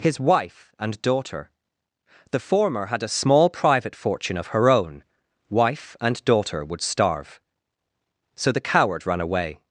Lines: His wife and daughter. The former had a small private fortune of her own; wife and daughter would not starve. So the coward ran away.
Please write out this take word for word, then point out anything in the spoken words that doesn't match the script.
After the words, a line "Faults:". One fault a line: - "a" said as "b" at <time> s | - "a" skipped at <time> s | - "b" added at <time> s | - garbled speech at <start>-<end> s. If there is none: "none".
His wife and daughter. The former had a small private fortune of her own; wife and daughter would starve. So the coward ran away.
Faults:
- "not" skipped at 6.8 s